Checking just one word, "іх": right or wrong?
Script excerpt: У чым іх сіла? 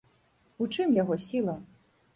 wrong